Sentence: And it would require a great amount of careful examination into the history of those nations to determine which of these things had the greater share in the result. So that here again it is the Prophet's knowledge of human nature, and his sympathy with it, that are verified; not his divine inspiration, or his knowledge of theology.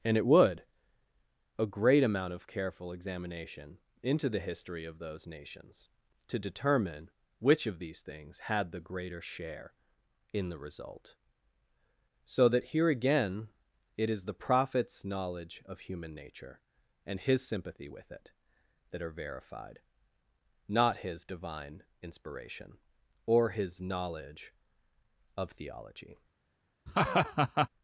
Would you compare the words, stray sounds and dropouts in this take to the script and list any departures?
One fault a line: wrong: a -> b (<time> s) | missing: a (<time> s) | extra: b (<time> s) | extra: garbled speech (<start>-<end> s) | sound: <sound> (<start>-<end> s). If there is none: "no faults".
missing: require (0.6 s)
sound: laugh (26.9-27.7 s)